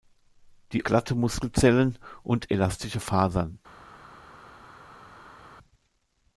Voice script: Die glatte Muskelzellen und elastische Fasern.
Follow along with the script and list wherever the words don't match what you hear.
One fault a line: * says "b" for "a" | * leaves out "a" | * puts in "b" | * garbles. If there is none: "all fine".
all fine